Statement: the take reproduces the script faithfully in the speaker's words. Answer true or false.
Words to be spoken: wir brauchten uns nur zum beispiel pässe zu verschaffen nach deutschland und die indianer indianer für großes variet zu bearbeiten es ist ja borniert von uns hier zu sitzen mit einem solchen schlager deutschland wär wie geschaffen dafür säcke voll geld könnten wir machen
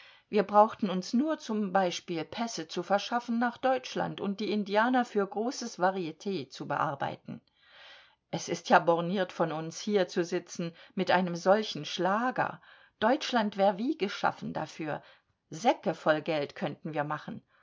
false